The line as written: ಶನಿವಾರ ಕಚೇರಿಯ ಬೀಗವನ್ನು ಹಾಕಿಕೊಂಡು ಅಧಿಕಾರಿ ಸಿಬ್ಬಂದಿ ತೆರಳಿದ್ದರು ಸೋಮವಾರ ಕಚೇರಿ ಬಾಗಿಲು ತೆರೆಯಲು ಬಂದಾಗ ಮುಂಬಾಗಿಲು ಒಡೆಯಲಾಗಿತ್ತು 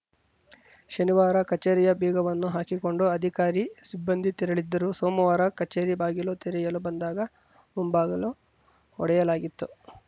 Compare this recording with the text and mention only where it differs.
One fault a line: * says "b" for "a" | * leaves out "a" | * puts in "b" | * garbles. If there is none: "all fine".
all fine